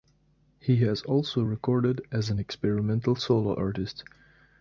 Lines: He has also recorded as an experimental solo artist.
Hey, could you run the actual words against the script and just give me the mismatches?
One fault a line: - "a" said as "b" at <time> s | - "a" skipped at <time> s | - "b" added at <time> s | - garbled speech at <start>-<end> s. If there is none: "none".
none